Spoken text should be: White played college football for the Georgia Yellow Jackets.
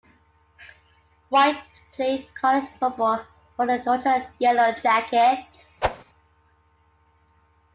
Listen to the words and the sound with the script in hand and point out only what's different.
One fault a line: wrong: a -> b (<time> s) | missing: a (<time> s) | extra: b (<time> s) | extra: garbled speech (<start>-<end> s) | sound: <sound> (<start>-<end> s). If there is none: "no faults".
sound: whoosh (5.8-6.0 s)